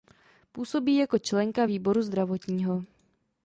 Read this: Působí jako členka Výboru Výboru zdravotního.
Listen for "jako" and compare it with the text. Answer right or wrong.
right